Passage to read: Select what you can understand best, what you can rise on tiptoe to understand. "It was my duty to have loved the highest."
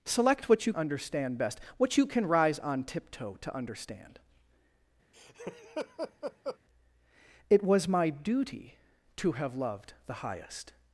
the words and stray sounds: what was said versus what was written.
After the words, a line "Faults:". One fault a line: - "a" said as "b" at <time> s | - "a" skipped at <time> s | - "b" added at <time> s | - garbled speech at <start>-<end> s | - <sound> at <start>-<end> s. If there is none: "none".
Select what you understand best, what you can rise on tiptoe to understand. "It was my duty to have loved the highest."
Faults:
- "can" skipped at 0.7 s
- laugh at 5.1-6.6 s